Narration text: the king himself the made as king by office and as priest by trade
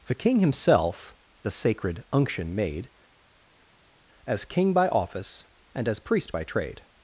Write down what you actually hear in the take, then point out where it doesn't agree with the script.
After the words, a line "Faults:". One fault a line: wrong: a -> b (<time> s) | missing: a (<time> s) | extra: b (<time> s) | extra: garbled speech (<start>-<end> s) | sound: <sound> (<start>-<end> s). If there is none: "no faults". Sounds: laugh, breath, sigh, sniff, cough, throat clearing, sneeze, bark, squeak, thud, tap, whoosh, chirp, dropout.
the king himself the sacred unction made as king by office and as priest by trade
Faults:
extra: sacred unction (1.5 s)